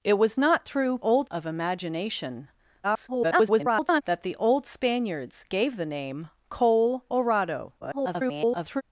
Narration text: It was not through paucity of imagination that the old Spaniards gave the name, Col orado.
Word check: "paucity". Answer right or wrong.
wrong